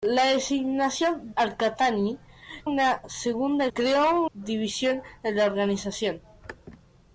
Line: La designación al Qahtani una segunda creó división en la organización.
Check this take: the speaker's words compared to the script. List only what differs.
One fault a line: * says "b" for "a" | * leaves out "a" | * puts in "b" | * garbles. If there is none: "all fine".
all fine